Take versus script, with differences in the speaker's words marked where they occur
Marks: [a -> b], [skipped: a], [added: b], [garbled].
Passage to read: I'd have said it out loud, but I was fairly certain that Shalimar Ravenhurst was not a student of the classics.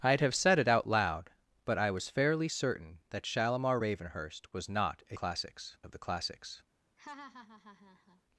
I'd have said it out loud, but I was fairly certain that Shalimar Ravenhurst was not a [student -> classics] of the classics.